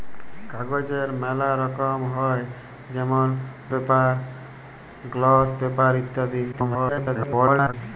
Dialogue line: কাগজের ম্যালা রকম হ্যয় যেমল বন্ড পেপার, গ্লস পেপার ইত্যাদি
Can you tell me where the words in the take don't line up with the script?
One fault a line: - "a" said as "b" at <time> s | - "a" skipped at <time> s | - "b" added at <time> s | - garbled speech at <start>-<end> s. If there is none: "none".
- "বন্ড" skipped at 3.3 s
- garbled speech at 6.5-7.7 s